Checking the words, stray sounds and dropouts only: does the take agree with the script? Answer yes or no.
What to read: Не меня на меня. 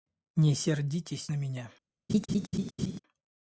no